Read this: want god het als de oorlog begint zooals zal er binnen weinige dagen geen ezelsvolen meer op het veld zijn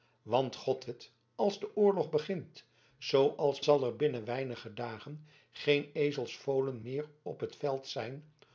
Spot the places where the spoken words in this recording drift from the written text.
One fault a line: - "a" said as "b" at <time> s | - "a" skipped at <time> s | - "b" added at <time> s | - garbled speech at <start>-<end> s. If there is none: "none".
none